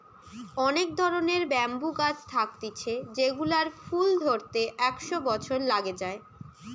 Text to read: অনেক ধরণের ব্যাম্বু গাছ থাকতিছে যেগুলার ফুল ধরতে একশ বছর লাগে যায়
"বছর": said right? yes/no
yes